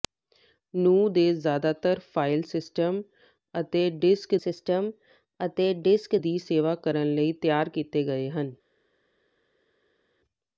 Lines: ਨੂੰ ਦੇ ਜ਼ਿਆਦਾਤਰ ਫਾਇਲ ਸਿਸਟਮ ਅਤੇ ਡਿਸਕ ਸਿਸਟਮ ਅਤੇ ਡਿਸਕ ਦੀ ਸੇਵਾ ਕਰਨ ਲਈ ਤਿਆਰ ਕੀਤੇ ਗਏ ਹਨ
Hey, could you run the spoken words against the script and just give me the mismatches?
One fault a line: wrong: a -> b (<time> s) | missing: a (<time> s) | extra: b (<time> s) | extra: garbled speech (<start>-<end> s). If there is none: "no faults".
no faults